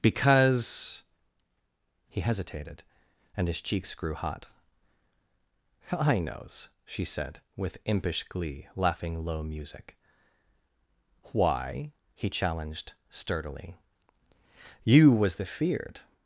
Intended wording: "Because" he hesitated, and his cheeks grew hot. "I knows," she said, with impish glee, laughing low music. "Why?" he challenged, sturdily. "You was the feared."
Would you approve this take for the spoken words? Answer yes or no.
yes